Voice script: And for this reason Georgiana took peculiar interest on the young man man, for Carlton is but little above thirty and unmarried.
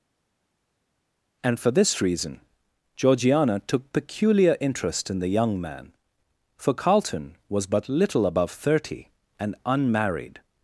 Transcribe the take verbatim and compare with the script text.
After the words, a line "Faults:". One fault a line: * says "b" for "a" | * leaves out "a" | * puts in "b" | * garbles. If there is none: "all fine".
And for this reason Georgiana took peculiar interest in the young man, for Carlton was but little above thirty and unmarried.
Faults:
* says "in" for "on"
* leaves out "man"
* says "was" for "is"